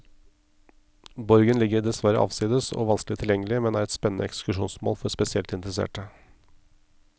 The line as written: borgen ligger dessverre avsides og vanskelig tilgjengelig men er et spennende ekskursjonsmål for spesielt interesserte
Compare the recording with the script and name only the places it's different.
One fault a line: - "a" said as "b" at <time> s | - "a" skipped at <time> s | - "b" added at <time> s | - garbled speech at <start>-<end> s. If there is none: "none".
none